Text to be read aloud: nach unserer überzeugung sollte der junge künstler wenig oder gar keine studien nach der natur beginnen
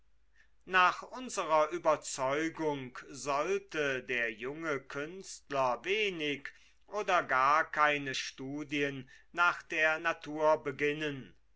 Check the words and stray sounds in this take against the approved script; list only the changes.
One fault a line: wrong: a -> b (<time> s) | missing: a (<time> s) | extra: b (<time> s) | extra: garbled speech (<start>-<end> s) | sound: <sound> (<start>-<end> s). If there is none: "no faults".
no faults